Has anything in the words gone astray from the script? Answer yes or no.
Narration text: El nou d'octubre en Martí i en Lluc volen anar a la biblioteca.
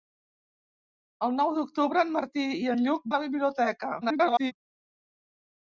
yes